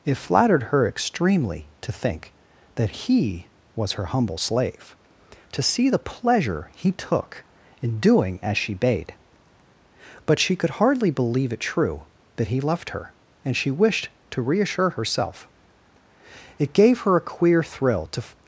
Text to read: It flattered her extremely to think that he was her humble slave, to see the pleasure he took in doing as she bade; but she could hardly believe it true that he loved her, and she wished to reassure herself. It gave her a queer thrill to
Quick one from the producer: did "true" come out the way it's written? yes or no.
yes